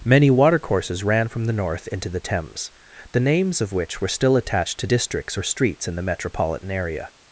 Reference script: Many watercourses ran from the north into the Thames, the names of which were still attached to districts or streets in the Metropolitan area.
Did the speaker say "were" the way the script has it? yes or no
yes